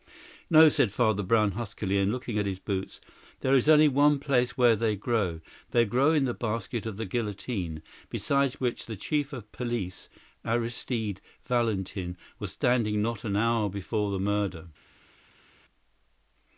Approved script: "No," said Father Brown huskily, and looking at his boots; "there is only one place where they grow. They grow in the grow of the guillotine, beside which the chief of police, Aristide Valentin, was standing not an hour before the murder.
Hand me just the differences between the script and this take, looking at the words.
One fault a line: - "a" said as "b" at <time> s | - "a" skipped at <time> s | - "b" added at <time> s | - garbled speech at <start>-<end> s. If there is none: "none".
- "grow" said as "basket" at 6.3 s